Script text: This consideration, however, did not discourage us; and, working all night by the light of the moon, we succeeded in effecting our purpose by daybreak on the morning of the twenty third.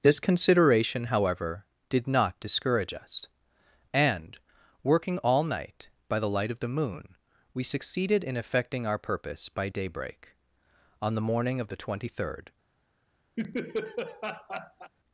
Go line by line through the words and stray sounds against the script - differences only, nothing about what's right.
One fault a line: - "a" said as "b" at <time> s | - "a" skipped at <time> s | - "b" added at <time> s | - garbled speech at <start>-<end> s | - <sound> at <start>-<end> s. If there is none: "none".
- laugh at 13.4-14.9 s